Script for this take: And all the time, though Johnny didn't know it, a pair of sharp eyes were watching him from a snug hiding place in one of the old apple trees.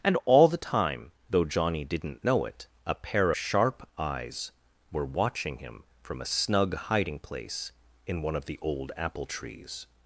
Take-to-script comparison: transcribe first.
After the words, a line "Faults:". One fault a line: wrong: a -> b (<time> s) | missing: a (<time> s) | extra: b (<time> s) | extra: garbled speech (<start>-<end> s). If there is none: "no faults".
And all the time, though Johnny didn't know it, a pair sharp eyes were watching him from a snug hiding place in one of the old apple trees.
Faults:
missing: of (3.3 s)